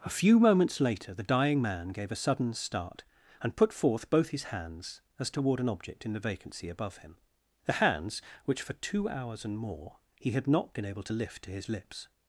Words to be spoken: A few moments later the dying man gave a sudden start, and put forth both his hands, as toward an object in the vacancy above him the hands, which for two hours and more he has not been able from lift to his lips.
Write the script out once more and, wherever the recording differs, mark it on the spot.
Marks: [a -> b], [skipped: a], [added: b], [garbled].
A few moments later the dying man gave a sudden start, and put forth both his hands, as toward an object in the vacancy above him the hands, which for two hours and more he [has -> had] not been able [from -> to] lift to his lips.